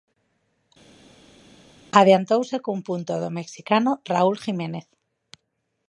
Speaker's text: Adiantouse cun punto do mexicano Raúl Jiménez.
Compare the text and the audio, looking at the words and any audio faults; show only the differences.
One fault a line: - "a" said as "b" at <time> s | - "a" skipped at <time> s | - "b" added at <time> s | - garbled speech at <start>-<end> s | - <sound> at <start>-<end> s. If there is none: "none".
none